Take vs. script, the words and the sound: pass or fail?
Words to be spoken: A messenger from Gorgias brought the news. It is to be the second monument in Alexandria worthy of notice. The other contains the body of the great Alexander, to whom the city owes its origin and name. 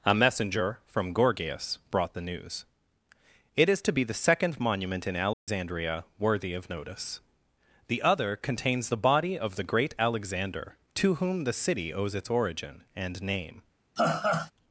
fail